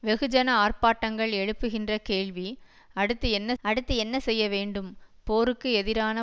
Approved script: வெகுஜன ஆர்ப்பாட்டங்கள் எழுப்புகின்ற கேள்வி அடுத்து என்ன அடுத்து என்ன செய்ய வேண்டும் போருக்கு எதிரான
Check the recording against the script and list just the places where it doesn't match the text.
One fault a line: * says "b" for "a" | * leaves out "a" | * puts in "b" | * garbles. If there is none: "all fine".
all fine